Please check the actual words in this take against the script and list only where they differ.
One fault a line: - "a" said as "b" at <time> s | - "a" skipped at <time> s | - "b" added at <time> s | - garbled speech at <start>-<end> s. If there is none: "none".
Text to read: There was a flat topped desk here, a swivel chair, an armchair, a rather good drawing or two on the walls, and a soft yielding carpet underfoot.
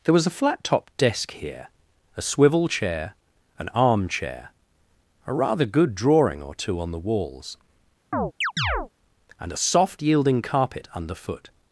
none